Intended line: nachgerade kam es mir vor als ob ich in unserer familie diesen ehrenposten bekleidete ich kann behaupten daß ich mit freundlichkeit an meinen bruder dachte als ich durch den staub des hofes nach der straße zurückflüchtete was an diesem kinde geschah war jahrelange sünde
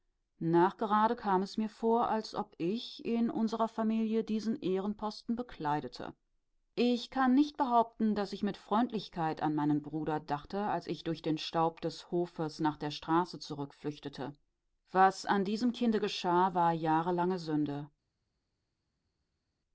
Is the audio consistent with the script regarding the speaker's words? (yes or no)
no